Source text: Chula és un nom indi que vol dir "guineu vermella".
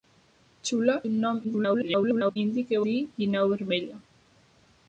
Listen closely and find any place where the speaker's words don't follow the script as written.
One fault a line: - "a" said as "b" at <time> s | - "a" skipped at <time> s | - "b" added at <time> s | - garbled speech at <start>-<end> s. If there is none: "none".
- "és" skipped at 0.9 s
- garbled speech at 1.4-2.4 s
- "vol" skipped at 2.8 s